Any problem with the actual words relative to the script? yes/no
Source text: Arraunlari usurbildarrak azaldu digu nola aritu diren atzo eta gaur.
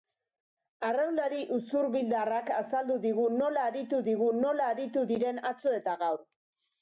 yes